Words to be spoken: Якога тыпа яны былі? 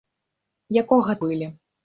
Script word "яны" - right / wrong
wrong